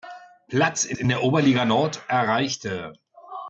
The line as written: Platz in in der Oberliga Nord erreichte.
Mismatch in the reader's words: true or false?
false